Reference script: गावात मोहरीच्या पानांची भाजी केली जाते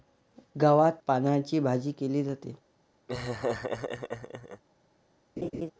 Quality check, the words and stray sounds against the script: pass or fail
fail